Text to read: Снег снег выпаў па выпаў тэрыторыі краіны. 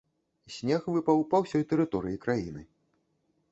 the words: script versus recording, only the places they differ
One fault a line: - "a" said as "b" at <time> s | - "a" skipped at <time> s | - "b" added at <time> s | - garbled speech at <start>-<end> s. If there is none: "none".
- "снег" skipped at 0.9 s
- "выпаў" said as "ўсёй" at 1.4 s